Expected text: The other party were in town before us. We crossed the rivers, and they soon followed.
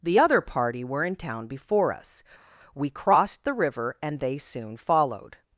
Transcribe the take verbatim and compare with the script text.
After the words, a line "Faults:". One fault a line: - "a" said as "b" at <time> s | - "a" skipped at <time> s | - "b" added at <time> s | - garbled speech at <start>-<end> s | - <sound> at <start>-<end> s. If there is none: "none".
The other party were in town before us. We crossed the river, and they soon followed.
Faults:
- "rivers" said as "river" at 3.5 s